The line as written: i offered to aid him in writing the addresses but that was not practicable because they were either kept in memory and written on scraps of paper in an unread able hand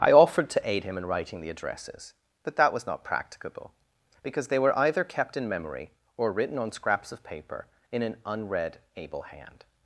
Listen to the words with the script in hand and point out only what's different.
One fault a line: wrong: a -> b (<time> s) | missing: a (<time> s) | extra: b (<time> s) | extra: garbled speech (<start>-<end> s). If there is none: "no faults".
wrong: and -> or (6.2 s)